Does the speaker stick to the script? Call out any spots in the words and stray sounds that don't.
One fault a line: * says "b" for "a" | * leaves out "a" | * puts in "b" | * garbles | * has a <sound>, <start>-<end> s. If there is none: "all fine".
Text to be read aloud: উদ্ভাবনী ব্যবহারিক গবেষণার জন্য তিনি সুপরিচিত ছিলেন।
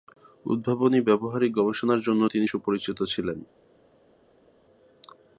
all fine